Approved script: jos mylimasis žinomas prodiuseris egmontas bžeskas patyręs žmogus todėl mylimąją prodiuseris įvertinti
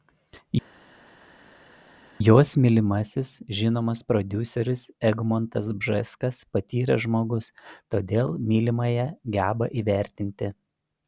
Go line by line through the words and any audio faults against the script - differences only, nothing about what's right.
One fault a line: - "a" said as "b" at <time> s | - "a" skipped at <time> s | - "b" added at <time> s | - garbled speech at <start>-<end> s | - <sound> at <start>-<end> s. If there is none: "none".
- "prodiuseris" said as "geba" at 9.4 s